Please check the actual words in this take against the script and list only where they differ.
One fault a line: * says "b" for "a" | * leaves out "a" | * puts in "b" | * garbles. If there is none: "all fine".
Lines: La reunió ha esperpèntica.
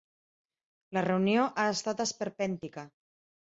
* puts in "estat"